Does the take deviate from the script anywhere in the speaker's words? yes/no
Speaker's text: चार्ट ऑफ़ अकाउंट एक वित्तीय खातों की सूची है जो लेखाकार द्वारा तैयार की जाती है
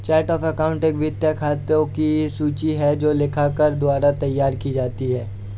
no